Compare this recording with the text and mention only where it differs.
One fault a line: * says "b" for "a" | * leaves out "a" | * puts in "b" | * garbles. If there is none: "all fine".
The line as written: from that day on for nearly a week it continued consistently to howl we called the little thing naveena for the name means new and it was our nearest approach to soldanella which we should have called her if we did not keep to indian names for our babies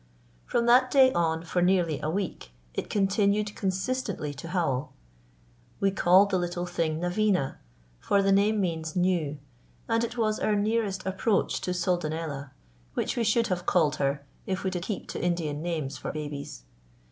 * leaves out "not"
* leaves out "our"